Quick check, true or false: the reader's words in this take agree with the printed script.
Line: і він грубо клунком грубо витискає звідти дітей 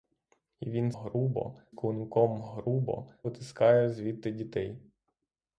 true